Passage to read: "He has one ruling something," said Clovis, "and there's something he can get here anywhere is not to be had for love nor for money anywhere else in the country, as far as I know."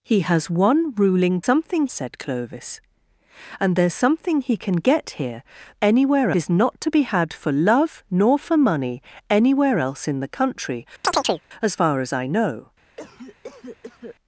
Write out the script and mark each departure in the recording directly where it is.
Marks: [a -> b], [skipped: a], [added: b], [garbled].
"He has one ruling something," said Clovis, "and there's something he can get here anywhere is not to be had for love nor for money anywhere else in the country, as far as I know."